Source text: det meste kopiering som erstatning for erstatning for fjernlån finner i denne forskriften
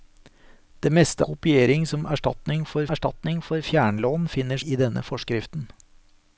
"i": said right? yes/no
yes